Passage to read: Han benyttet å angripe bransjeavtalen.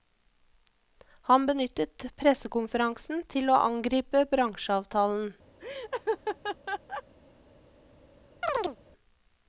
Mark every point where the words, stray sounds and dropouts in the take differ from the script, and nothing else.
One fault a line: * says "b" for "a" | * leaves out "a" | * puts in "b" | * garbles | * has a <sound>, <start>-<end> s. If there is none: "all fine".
* puts in "pressekonferansen til"
* has a laugh, 5.6-7.0 s
* has a chirp, 8.4-8.8 s